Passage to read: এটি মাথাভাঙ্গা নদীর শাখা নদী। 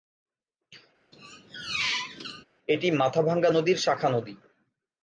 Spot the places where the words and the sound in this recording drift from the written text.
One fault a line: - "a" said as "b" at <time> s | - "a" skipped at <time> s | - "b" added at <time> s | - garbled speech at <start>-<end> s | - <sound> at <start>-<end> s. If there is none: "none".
- squeak at 1.1-2.4 s